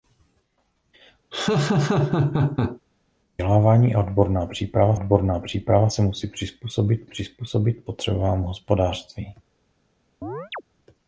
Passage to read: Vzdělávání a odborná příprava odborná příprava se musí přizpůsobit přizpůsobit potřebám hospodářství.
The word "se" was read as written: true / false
true